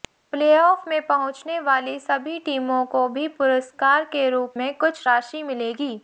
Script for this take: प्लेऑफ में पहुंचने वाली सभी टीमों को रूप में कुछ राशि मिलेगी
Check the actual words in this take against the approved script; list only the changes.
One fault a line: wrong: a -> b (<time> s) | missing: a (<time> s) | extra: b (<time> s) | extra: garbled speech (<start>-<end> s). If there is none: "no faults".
extra: भी पुरस्कार के (3.1 s)